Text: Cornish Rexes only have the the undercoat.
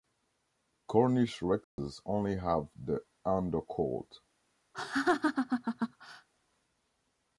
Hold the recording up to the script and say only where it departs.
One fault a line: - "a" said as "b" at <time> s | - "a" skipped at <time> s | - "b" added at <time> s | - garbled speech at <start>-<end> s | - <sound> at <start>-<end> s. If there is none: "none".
- dropout at 1.6-1.8 s
- "the" skipped at 3.0 s
- laugh at 4.7-6.3 s